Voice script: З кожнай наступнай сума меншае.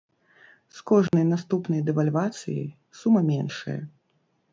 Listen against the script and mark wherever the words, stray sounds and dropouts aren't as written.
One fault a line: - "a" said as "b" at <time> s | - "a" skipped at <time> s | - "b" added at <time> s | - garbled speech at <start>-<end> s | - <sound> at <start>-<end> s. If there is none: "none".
- dropout at 1.1-1.1 s
- "дэвальвацыяй" added at 1.9 s